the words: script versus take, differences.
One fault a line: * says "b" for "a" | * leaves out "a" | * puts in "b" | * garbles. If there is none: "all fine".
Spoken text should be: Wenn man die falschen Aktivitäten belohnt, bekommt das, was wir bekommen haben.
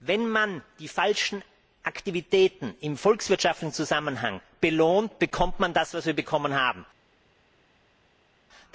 * puts in "im volkswirtschaftlichen Zusammenhang"
* puts in "man"